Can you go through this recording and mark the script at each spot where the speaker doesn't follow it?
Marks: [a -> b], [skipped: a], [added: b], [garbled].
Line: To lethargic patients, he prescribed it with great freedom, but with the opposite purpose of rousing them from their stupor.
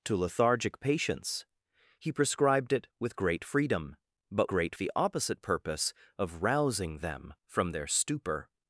To lethargic patients, he prescribed it with great freedom, but [with -> great] the opposite purpose of rousing them from their stupor.